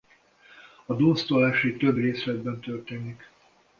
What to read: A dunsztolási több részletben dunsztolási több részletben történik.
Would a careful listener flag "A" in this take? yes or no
no